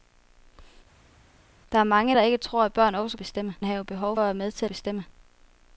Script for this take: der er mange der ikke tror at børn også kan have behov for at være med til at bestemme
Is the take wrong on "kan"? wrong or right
wrong